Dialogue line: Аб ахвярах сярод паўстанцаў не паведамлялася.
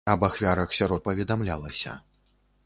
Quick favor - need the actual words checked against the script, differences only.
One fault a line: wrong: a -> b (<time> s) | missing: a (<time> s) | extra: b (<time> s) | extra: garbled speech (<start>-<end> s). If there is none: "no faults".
missing: паўстанцаў не (1.1 s)